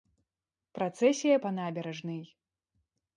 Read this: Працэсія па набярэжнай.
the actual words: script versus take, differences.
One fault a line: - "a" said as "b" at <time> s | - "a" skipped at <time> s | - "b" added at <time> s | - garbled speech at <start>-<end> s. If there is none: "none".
none